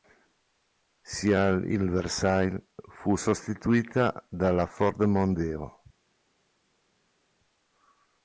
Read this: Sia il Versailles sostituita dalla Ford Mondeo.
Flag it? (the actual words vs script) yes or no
yes